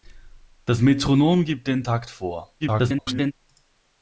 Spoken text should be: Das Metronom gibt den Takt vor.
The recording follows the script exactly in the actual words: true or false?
false